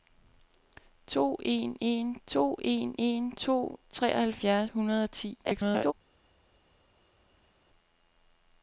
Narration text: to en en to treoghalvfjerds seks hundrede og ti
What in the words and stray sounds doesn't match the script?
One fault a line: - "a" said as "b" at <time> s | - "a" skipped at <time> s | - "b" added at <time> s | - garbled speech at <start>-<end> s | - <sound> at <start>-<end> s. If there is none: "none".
- "en en to" added at 2.6 s
- "seks" skipped at 4.7 s
- garbled speech at 5.4-5.9 s